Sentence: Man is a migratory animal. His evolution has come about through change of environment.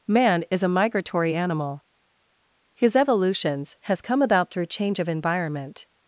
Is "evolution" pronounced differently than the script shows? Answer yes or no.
yes